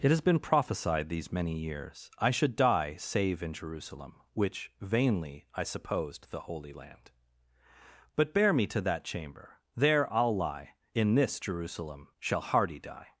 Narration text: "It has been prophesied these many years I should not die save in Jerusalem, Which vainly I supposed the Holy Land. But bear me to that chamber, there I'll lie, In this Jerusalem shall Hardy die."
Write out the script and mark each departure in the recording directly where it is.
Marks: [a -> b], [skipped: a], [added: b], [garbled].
"It has been prophesied these many years I should [skipped: not] die save in Jerusalem, Which vainly I supposed the Holy Land. But bear me to that chamber, there I'll lie, In this Jerusalem shall Hardy die."